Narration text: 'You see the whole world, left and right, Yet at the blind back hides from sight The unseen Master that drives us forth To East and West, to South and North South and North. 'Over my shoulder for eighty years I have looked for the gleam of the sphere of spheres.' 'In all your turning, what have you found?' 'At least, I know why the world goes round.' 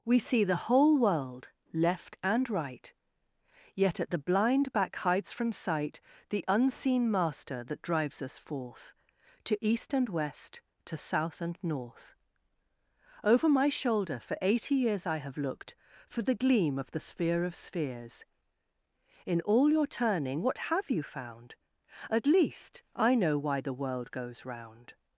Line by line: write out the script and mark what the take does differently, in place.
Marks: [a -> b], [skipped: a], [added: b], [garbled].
['You -> We] see the whole world, left and right, Yet at the blind back hides from sight The unseen Master that drives us forth To East and West, to South and North [skipped: South and North.] 'Over my shoulder for eighty years I have looked for the gleam of the sphere of spheres.' 'In all your turning, what have you found?' 'At least, I know why the world goes round.'